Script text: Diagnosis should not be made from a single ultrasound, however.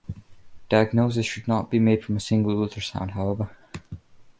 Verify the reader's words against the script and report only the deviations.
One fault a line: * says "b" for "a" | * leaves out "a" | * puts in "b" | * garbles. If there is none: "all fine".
all fine